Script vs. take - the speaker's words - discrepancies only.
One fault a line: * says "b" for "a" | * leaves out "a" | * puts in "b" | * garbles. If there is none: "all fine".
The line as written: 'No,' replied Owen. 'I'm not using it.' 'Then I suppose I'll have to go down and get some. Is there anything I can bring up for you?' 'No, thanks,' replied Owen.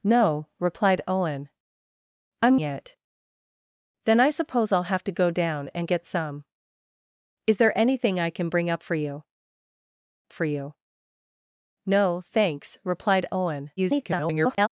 * leaves out "not using"
* puts in "for you"
* garbles